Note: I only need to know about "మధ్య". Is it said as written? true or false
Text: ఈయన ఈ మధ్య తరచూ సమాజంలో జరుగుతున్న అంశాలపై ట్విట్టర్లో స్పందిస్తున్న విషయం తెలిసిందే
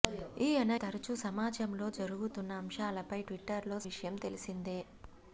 false